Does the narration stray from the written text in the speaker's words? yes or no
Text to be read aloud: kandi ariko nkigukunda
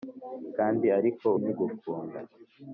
no